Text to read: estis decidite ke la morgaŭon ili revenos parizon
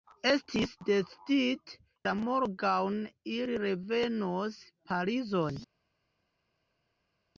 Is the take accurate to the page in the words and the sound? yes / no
no